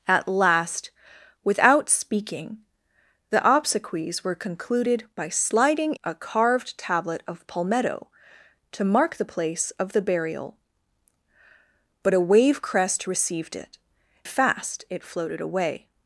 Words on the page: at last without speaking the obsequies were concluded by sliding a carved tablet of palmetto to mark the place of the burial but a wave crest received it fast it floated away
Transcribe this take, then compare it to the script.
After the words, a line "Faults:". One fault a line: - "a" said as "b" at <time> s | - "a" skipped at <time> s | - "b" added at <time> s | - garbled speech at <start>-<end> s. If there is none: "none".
at last without speaking the obsequies were concluded by sliding a carved tablet of palmetto to mark the place of the burial but a wave crest received it fast it floated away
Faults:
none